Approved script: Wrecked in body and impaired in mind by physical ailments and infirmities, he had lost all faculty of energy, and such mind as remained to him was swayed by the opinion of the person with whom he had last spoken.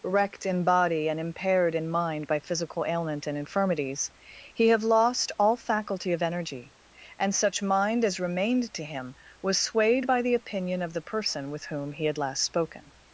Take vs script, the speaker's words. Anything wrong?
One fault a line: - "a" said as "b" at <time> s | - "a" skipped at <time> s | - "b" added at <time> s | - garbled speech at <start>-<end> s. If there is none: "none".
- "ailments" said as "ailment" at 2.9 s
- "had" said as "have" at 4.7 s